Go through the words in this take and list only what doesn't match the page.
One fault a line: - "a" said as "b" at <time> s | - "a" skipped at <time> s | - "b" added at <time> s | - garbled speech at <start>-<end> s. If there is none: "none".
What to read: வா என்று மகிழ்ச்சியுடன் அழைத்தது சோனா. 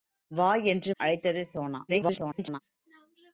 - "மகிழ்ச்சியுடன்" skipped at 0.9 s
- garbled speech at 1.9-2.6 s